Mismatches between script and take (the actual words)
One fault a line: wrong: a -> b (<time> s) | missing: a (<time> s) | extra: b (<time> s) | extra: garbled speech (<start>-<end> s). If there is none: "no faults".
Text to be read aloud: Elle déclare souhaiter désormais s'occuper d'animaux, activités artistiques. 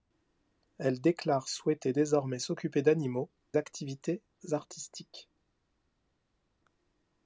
no faults